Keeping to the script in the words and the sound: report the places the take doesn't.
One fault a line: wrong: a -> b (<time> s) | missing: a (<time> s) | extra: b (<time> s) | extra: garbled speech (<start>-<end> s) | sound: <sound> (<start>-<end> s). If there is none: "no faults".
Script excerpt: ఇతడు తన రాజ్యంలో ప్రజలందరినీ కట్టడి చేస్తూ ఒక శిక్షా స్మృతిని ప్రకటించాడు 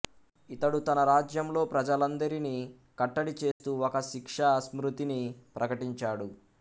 sound: dropout (3.5-3.6 s)